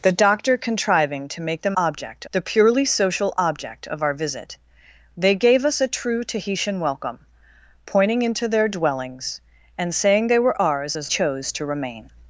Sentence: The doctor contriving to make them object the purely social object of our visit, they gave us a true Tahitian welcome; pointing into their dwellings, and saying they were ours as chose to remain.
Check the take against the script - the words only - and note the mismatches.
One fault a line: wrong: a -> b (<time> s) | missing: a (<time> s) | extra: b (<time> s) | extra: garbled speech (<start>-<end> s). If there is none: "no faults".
no faults